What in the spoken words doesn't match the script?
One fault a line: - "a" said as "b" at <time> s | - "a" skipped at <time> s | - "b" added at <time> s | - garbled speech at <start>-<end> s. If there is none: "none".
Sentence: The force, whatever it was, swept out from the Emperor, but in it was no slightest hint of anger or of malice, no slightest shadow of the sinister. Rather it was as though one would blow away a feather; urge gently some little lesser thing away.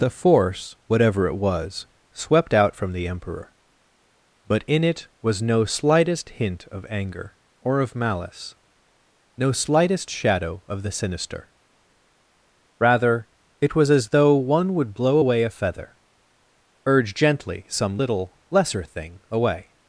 none